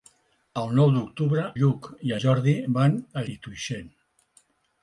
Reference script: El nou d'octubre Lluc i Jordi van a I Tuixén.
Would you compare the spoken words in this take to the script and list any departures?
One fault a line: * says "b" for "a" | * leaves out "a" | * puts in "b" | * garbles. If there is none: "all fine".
all fine